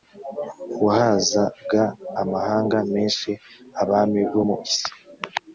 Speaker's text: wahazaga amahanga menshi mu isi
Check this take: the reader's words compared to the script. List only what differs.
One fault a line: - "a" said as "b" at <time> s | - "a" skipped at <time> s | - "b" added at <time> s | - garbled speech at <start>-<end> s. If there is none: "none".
- "abami bo" added at 3.8 s